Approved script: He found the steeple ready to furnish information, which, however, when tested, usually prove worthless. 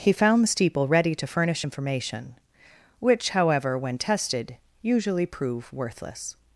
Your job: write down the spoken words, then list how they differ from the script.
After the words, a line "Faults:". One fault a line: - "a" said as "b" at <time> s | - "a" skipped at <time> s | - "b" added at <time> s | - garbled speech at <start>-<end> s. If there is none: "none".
He found the steeple ready to furnish information, which, however, when tested, usually prove worthless.
Faults:
none